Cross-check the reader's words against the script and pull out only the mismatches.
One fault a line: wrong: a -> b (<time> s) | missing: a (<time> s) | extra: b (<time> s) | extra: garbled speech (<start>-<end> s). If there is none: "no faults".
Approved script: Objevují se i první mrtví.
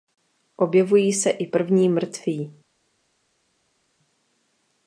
no faults